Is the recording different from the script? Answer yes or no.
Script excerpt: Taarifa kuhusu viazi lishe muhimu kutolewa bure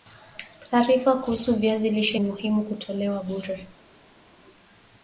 no